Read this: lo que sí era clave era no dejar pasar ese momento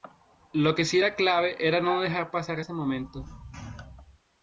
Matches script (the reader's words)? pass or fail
pass